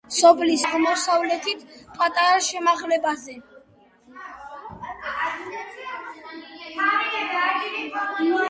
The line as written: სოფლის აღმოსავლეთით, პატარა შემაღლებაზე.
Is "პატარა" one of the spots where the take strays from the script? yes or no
no